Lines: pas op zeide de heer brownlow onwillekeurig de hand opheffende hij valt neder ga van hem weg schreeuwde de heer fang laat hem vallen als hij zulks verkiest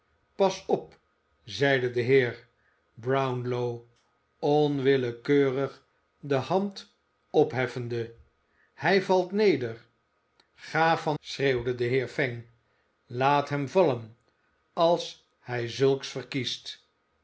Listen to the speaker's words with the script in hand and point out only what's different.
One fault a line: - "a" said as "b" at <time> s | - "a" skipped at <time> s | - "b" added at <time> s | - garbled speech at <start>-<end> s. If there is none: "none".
- "hem weg" skipped at 11.2 s